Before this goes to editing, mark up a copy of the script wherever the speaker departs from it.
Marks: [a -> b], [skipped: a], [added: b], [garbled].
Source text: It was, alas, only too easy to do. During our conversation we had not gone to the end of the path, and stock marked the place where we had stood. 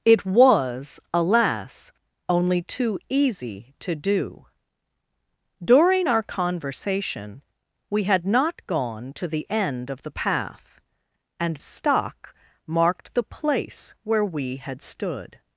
It was, alas, only too easy to do. During our conversation we had not gone to the end of the path, and stock marked the place where we had stood.